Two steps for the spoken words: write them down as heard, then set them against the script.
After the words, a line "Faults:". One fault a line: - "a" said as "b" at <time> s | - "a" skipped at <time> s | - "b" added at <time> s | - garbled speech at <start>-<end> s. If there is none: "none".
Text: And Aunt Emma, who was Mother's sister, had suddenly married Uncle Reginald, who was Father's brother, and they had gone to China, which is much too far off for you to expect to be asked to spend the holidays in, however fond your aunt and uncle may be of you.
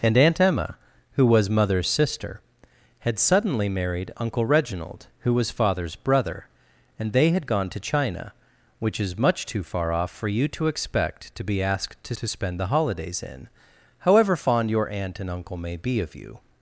And Aunt Emma, who was Mother's sister, had suddenly married Uncle Reginald, who was Father's brother, and they had gone to China, which is much too far off for you to expect to be asked to to spend the holidays in, however fond your aunt and uncle may be of you.
Faults:
- "to" added at 12.1 s